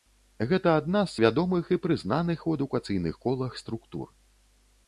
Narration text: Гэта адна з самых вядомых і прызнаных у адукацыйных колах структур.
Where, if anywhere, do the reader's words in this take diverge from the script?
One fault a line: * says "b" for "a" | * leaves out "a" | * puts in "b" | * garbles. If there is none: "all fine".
* leaves out "самых"